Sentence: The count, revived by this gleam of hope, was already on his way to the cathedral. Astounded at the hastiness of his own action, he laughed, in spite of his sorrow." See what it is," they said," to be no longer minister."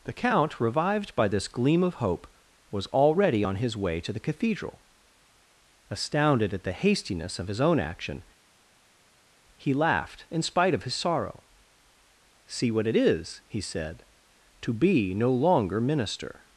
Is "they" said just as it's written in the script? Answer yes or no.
no